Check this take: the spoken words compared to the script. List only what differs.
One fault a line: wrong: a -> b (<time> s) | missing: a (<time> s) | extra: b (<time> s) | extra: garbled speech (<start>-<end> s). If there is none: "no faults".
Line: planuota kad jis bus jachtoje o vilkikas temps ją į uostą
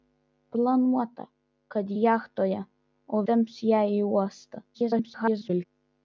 missing: jis bus (1.9 s)
missing: vilkikas (3.2 s)
extra: garbled speech (4.7-5.7 s)